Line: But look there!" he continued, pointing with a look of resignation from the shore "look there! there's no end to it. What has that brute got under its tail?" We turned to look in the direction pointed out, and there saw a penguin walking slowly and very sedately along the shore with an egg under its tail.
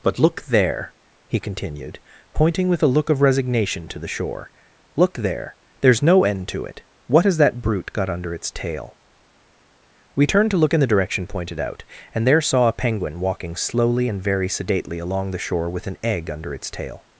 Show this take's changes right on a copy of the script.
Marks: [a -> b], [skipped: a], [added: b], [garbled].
But look there!" he continued, pointing with a look of resignation [from -> to] the shore "look there! there's no end to it. What has that brute got under its tail?" We turned to look in the direction pointed out, and there saw a penguin walking slowly and very sedately along the shore with an egg under its tail.